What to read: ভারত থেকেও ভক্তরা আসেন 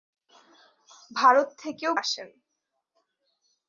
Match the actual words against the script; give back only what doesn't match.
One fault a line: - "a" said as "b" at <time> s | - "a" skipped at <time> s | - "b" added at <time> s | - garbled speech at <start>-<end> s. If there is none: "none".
- "ভক্তরা" skipped at 1.9 s